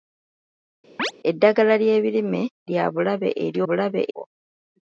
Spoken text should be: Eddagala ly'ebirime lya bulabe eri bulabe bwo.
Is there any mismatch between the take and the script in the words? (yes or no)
no